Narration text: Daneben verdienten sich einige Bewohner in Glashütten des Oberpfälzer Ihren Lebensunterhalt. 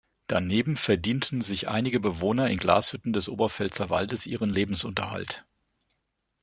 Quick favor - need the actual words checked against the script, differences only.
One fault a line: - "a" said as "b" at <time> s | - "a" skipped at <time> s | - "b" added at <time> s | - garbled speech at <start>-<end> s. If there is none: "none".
- "Waldes" added at 3.9 s